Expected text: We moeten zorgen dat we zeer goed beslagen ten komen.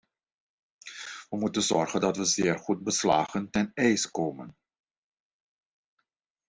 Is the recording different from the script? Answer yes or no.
yes